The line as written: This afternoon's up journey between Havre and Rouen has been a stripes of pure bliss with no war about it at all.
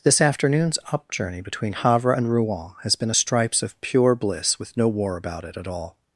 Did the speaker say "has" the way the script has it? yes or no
yes